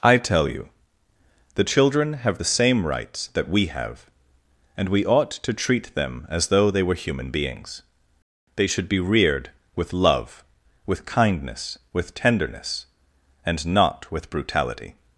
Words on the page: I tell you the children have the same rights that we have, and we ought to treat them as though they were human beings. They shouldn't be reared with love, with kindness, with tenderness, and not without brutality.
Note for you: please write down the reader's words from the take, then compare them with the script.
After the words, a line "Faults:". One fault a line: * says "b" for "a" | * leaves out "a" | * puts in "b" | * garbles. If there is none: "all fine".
I tell you the children have the same rights that we have, and we ought to treat them as though they were human beings. They should be reared with love, with kindness, with tenderness, and not with brutality.
Faults:
* says "should" for "shouldn't"
* says "with" for "without"